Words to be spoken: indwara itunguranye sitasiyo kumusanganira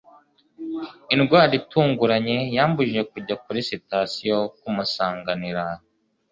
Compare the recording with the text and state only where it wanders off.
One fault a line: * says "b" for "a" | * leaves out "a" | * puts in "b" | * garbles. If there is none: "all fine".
* puts in "yambujije kujya kuri"